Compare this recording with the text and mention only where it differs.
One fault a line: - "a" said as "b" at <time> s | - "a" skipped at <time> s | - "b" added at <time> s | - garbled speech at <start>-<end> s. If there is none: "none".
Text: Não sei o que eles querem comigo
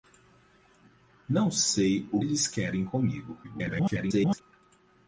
- "que" skipped at 2.2 s
- garbled speech at 3.4-4.4 s